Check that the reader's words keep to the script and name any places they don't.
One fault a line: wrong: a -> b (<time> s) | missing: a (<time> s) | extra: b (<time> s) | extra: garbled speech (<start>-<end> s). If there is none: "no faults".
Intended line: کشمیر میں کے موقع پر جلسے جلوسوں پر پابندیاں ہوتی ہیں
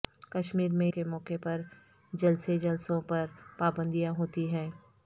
no faults